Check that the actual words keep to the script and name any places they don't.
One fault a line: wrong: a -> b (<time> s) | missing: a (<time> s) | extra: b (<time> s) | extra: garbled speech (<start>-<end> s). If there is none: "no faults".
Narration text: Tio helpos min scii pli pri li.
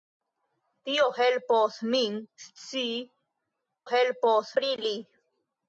wrong: pli -> helpos (3.9 s)